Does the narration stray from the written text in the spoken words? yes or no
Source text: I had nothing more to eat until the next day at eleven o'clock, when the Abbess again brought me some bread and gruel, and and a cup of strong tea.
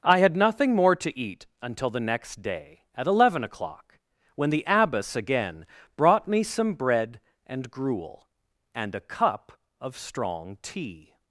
yes